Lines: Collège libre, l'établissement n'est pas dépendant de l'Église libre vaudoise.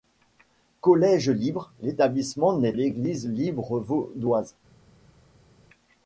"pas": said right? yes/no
no